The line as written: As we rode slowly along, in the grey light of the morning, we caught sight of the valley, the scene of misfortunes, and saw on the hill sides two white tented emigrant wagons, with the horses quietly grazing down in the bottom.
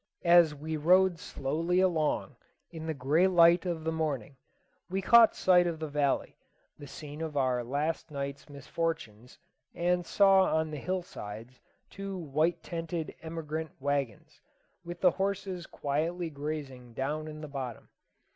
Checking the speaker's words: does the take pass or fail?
fail